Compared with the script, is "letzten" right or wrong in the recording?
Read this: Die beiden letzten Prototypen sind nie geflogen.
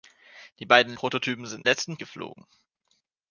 wrong